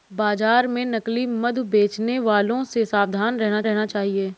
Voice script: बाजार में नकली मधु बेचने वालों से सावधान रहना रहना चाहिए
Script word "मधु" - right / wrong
right